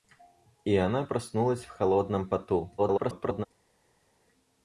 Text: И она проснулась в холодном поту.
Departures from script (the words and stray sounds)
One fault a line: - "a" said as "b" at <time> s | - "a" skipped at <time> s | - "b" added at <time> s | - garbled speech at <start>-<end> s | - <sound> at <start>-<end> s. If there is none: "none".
- garbled speech at 2.8-3.5 s